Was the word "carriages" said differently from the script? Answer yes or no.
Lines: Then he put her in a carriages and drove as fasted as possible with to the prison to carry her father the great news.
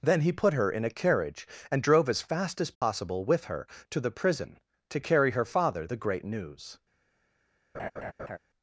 yes